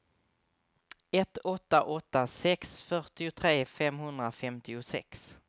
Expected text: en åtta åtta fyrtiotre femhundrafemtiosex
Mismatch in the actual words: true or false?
true